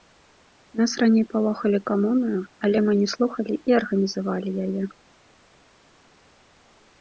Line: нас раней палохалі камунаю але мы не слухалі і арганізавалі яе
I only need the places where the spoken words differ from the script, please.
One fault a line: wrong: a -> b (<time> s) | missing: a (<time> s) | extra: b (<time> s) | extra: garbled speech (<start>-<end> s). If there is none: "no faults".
no faults